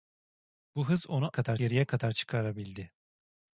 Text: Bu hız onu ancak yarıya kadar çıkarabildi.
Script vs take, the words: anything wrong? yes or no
yes